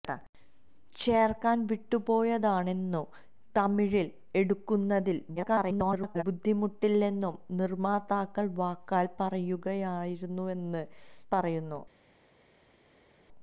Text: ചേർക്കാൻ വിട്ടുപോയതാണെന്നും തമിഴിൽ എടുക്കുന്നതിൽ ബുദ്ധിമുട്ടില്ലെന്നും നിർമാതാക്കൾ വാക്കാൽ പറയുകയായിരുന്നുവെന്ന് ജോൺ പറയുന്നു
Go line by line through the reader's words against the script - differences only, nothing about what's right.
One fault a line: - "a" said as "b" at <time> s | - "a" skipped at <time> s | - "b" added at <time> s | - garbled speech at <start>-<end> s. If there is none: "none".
- garbled speech at 5.4-6.2 s
- "ജോൺ" skipped at 10.8 s